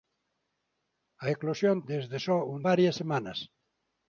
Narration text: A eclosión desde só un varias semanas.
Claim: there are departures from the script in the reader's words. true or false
false